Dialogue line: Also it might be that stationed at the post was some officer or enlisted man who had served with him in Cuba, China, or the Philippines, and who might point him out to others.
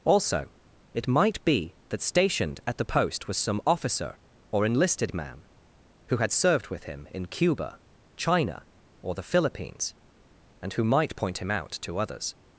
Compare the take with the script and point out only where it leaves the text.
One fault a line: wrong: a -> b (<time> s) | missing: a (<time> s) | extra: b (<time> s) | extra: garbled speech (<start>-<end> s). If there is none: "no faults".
no faults